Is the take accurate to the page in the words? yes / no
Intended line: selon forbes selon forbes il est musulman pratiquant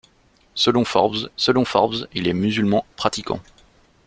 yes